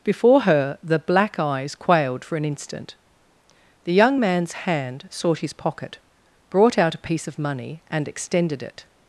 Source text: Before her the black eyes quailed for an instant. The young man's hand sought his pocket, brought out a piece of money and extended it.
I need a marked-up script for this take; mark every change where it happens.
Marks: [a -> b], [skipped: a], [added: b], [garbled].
Before her the black eyes quailed for an instant. The young man's hand sought his pocket, brought out a piece of money and extended it.